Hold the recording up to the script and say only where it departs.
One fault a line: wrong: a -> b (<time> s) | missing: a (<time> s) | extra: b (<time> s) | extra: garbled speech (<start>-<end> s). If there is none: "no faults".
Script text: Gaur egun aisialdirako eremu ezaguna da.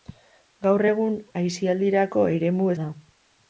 missing: ezaguna (2.7 s)